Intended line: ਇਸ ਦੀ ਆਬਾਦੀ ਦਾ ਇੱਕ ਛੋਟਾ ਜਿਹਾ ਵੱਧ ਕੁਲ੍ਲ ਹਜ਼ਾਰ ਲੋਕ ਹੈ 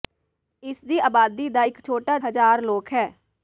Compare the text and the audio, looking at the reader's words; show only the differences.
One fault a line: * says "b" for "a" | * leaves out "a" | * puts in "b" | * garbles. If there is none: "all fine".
* leaves out "ਜਿਹਾ ਵੱਧ ਕੁਲ੍ਲ"